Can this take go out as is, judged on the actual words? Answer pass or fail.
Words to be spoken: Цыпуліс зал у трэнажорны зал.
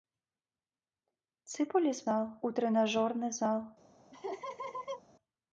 pass